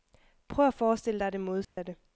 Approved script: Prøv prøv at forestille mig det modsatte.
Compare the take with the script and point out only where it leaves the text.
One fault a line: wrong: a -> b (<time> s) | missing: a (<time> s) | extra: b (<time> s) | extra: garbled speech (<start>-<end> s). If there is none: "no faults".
missing: prøv (0.7 s)
wrong: mig -> dig (1.2 s)